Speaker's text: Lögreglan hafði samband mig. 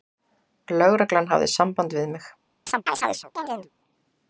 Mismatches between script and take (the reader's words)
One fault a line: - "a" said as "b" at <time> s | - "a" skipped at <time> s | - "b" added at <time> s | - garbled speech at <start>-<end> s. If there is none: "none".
- "við" added at 2.0 s